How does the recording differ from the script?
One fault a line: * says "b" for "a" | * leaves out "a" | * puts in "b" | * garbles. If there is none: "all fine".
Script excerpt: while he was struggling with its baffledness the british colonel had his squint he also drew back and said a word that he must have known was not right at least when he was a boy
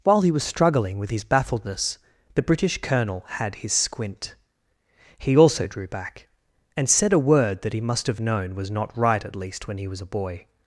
* says "his" for "its"